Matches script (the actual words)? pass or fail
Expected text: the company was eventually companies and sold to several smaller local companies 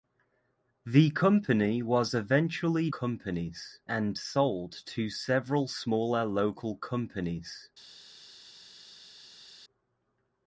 pass